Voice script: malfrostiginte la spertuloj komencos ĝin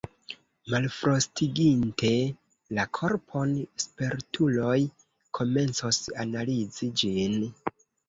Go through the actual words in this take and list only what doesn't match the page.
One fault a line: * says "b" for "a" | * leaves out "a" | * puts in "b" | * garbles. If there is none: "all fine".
* puts in "korpon"
* puts in "analizi"